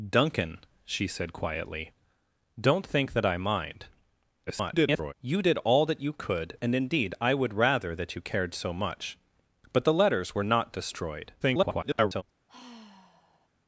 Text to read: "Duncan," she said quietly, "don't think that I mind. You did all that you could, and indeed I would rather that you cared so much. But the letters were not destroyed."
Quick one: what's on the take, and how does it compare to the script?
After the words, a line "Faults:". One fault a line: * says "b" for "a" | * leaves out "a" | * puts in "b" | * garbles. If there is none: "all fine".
"Duncan," she said quietly, "don't think that I mind. [garbled] You did all that you could, and indeed I would rather that you cared so much. But the letters were not destroyed." [garbled]
Faults:
* garbles
* garbles